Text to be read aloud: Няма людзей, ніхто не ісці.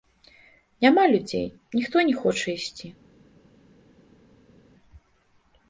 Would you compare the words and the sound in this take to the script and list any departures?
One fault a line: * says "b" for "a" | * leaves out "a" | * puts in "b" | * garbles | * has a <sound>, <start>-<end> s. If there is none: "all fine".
* puts in "хоча"